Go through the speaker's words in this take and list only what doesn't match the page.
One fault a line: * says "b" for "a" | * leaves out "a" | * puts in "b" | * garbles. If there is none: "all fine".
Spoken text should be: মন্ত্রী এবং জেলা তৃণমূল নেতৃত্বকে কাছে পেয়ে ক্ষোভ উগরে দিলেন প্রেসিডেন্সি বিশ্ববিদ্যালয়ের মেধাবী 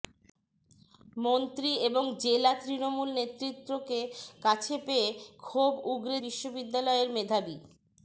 * leaves out "দিলেন প্রেসিডেন্সি"